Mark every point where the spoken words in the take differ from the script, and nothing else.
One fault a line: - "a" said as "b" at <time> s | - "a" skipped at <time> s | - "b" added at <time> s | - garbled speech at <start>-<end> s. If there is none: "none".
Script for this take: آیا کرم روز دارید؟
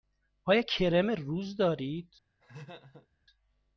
none